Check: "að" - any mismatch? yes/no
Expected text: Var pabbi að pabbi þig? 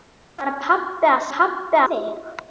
no